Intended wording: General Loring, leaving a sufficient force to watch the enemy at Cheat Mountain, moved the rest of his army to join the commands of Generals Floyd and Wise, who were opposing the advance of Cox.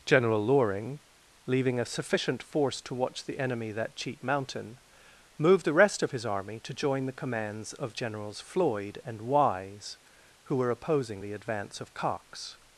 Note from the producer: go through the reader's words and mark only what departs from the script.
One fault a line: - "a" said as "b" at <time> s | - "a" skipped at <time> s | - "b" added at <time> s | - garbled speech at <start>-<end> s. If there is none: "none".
- "at" said as "that" at 3.7 s